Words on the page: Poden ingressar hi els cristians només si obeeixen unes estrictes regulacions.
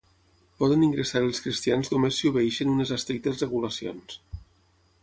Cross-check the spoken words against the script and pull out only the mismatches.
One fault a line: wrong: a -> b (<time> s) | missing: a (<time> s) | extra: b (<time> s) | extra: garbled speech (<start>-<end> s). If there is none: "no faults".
no faults